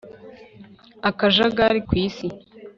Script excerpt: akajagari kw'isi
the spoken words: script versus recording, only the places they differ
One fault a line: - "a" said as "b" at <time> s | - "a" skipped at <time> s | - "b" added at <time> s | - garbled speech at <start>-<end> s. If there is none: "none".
none